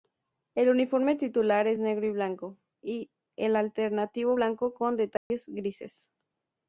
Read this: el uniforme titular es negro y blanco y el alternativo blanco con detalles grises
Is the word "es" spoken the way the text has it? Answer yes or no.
yes